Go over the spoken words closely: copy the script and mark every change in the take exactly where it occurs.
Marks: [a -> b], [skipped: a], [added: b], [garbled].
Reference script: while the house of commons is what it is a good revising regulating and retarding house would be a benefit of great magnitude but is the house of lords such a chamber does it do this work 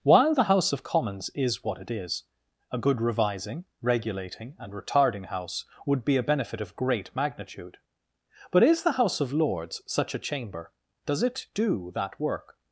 while the house of commons is what it is a good revising regulating and retarding house would be a benefit of great magnitude but is the house of lords such a chamber does it do [this -> that] work